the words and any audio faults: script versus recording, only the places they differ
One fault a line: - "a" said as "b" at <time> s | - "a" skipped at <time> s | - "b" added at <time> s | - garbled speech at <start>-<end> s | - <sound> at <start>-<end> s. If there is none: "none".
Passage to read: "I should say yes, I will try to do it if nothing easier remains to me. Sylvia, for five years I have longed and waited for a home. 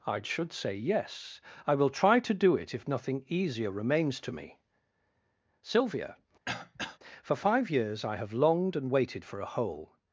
- throat clearing at 6.5-7.0 s
- "home" said as "hole" at 9.5 s